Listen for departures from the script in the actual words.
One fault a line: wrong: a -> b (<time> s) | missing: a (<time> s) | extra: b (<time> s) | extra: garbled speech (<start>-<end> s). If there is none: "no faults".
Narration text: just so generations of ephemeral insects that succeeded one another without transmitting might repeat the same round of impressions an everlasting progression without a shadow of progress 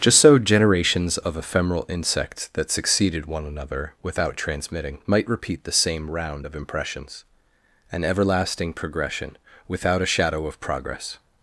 no faults